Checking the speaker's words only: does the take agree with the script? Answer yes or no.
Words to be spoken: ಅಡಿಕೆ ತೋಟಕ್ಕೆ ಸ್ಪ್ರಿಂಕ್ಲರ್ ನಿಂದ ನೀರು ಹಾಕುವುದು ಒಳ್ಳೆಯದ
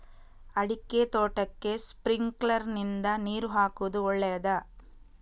yes